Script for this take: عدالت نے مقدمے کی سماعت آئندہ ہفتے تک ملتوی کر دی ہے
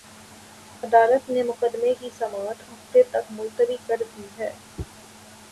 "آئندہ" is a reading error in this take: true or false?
true